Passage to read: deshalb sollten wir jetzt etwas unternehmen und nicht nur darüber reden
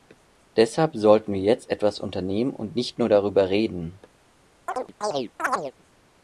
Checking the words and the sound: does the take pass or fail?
fail